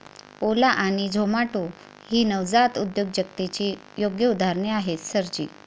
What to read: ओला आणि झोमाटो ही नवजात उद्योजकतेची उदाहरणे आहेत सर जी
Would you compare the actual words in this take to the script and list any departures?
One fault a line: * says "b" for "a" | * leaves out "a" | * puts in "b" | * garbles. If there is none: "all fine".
* puts in "योग्य"